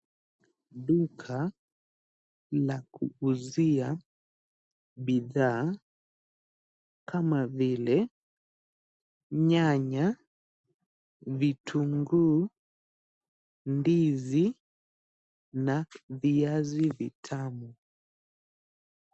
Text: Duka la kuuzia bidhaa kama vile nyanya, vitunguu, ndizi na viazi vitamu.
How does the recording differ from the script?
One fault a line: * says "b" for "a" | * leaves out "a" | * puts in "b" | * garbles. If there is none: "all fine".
all fine